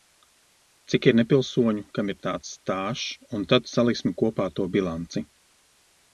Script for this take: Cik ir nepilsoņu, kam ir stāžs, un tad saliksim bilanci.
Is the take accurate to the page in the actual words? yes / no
no